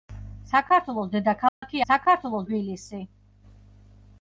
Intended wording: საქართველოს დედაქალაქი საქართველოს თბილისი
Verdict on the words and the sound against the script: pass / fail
fail